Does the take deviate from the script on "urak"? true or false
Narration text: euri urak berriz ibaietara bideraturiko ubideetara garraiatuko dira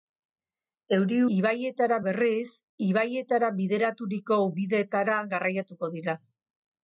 true